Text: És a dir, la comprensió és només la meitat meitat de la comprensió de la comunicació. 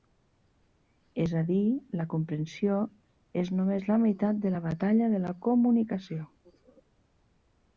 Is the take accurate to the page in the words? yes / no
no